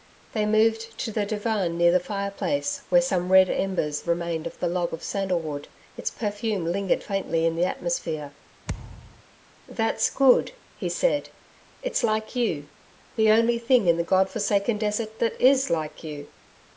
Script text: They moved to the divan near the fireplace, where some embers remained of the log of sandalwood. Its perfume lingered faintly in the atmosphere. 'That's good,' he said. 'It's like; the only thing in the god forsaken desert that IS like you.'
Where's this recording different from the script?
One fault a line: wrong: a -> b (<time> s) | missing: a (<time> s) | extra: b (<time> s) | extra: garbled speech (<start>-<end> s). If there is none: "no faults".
extra: red (3.3 s)
extra: you (12.4 s)